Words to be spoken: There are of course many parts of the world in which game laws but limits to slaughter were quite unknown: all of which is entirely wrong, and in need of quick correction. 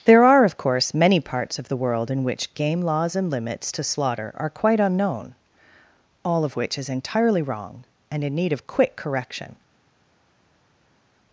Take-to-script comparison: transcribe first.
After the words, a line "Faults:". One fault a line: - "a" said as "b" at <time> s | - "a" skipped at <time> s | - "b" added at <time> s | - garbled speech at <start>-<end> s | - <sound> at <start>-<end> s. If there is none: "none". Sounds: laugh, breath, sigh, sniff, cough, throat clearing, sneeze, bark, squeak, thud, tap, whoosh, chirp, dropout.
There are of course many parts of the world in which game laws and limits to slaughter are quite unknown: all of which is entirely wrong, and in need of quick correction.
Faults:
- "but" said as "and" at 3.1 s
- "were" said as "are" at 4.4 s